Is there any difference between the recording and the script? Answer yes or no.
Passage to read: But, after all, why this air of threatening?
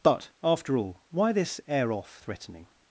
yes